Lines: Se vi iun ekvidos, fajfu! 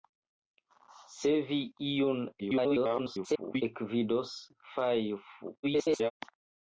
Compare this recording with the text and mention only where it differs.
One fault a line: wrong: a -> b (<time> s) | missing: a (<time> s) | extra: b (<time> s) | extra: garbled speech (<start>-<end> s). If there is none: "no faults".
extra: garbled speech (2.4-3.6 s)
extra: garbled speech (5.6-6.1 s)